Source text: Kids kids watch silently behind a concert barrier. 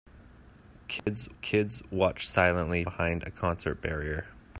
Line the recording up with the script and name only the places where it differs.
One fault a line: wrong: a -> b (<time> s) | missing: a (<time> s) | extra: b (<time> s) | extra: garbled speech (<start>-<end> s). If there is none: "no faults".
no faults